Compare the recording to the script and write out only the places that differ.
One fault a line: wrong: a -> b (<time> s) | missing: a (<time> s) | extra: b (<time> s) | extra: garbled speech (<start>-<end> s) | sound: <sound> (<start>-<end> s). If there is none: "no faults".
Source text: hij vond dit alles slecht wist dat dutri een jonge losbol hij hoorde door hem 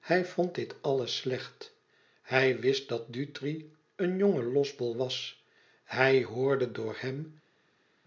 extra: hij (2.2 s)
extra: was (5.0 s)